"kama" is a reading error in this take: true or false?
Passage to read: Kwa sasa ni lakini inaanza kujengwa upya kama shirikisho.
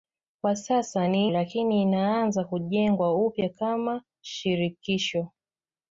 false